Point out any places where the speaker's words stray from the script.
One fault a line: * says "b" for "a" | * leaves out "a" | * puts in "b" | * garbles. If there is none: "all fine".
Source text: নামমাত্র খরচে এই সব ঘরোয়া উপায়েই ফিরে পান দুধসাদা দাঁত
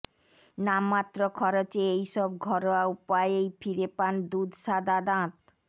all fine